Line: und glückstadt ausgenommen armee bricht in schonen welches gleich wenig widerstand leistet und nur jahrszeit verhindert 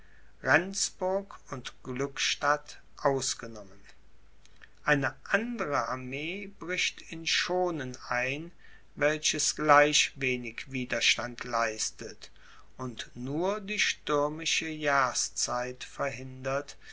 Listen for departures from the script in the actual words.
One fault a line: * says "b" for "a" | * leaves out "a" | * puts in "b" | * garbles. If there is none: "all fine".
* puts in "eine andere"
* puts in "ein"
* puts in "die stürmische"